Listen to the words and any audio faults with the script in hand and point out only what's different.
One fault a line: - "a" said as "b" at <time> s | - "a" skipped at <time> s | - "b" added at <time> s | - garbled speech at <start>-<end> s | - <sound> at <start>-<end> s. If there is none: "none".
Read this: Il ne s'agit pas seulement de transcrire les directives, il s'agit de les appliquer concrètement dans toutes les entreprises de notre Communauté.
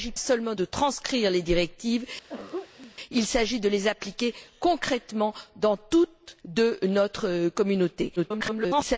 - "pas" skipped at 0.1 s
- throat clearing at 2.3-3.0 s
- "les entreprises" skipped at 6.4 s
- garbled speech at 8.2-9.0 s